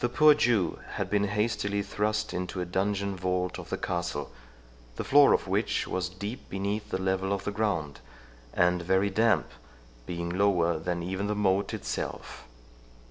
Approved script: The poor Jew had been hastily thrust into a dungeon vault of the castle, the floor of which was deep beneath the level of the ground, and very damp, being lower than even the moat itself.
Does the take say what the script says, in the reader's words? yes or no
yes